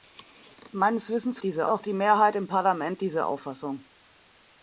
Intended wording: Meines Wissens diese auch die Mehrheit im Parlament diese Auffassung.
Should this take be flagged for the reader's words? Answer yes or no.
no